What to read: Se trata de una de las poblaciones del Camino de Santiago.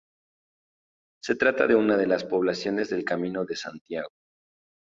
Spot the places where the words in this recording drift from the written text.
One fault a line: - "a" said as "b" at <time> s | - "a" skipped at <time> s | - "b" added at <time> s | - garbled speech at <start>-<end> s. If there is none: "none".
none